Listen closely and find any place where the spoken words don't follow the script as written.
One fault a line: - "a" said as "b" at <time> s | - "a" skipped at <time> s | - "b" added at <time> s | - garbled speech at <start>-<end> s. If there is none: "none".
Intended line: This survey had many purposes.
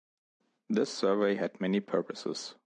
none